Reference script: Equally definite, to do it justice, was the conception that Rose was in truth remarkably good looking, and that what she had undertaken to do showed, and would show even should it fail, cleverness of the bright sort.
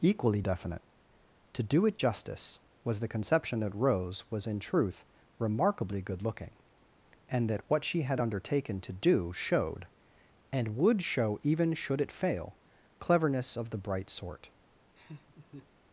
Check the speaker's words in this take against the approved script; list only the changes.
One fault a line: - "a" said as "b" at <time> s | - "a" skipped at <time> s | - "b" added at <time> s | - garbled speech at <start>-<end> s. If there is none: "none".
none